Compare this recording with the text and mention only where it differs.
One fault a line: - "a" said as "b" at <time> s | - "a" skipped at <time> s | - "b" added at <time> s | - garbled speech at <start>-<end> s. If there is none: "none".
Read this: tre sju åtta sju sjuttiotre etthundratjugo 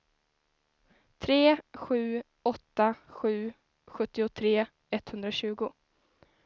none